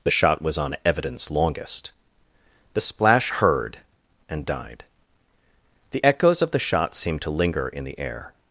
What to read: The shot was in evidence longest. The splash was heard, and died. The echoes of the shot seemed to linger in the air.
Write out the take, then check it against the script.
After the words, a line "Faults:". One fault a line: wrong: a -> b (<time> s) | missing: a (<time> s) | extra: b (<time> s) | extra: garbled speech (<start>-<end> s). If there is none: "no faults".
The shot was on evidence longest. The splash heard, and died. The echoes of the shot seemed to linger in the air.
Faults:
wrong: in -> on (0.6 s)
missing: was (3.3 s)